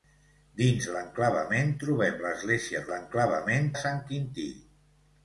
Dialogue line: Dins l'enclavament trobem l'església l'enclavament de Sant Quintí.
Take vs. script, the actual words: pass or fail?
pass